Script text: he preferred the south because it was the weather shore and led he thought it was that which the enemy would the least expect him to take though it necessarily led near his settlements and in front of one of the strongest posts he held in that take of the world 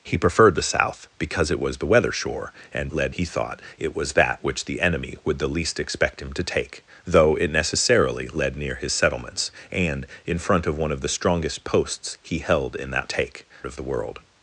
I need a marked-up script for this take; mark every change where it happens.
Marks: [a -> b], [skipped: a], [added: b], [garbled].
he preferred the south because it was the weather shore and led he thought it was that which the enemy would the least expect him to take though it necessarily led near his settlements and in front of one of the strongest posts he held in that take of the world